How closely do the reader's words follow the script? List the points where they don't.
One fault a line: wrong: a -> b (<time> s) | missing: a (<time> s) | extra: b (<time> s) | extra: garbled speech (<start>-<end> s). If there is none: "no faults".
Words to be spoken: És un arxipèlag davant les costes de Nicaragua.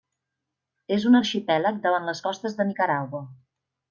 no faults